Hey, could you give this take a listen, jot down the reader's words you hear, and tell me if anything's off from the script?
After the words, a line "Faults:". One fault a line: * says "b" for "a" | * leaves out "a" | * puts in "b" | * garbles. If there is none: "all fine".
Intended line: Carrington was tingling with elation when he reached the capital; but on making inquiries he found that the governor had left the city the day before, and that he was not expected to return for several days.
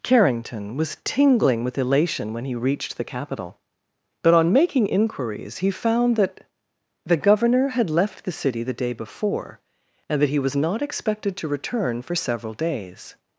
Carrington was tingling with elation when he reached the capital; but on making inquiries he found that the governor had left the city the day before, and that he was not expected to return for several days.
Faults:
all fine